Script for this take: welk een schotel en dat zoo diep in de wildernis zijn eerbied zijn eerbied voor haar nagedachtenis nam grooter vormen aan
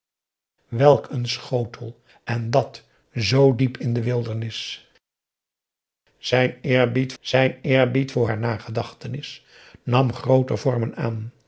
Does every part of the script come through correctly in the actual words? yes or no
yes